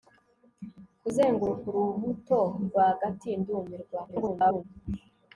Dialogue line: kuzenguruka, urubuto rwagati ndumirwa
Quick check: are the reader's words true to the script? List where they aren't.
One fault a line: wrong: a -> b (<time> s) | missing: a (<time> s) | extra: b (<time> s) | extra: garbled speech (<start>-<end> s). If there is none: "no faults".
extra: garbled speech (4.1-4.6 s)